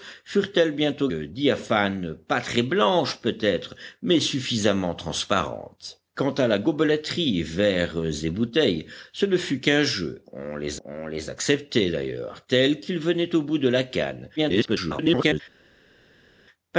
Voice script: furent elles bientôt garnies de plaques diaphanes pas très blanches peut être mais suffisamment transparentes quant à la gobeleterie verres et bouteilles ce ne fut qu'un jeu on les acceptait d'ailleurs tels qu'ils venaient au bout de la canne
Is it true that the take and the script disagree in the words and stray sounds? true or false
true